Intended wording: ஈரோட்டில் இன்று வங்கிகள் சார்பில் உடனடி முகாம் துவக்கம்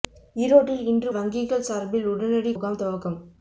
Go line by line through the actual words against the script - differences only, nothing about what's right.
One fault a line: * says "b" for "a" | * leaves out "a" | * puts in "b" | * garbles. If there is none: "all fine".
all fine